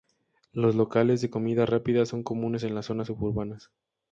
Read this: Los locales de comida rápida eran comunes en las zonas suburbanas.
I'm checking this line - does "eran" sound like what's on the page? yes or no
no